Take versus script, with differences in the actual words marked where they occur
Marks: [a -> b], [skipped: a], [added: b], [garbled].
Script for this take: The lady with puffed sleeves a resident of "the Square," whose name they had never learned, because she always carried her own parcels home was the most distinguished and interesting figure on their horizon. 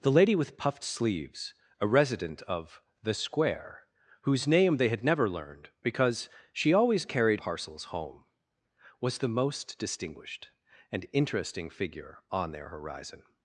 The lady with puffed sleeves a resident of "the Square," whose name they had never learned, because she always carried [skipped: her own] parcels home was the most distinguished and interesting figure on their horizon.